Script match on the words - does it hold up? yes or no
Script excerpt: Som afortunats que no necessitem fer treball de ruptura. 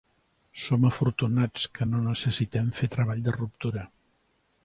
yes